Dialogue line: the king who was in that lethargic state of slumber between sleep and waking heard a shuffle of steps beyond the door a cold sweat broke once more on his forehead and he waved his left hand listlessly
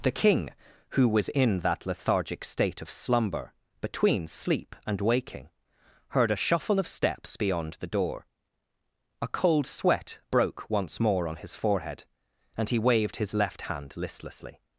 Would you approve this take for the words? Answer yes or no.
yes